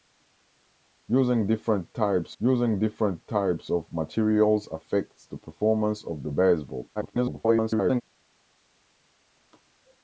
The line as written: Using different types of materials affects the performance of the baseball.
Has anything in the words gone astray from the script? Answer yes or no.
yes